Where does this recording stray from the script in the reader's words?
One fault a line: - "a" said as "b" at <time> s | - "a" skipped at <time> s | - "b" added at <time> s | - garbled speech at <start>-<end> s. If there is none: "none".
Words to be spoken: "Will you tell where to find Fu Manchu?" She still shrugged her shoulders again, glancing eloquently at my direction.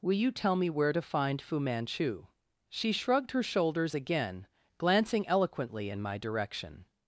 - "me" added at 0.6 s
- "still" skipped at 2.9 s
- "at" said as "in" at 5.9 s